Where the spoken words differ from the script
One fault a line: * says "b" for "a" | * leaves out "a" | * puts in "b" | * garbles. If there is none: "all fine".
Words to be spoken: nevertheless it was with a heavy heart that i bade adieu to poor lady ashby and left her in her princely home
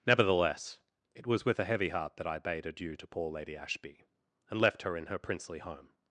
all fine